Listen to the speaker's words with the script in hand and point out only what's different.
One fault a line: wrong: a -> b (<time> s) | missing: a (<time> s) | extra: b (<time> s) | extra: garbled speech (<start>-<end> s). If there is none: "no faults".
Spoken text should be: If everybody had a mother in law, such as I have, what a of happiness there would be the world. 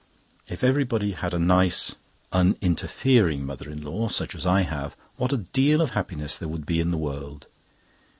extra: nice un_interfering (1.4 s)
extra: deal (5.4 s)
extra: in (6.8 s)